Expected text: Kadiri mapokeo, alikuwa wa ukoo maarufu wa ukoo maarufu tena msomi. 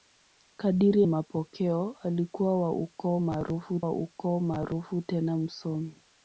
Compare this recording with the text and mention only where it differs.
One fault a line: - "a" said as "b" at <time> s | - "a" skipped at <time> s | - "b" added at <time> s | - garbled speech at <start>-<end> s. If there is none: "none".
none